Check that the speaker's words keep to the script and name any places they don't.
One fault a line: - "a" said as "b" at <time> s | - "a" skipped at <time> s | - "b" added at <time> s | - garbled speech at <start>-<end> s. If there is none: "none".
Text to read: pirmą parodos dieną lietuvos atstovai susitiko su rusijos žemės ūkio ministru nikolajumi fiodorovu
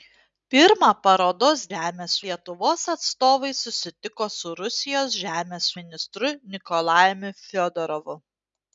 - "dieną" said as "žemės" at 1.7 s
- "ūkio" skipped at 5.7 s